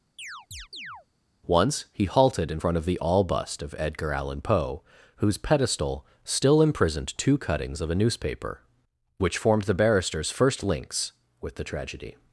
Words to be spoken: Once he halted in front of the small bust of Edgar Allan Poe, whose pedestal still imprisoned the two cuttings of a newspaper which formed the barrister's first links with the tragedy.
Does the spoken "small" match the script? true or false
false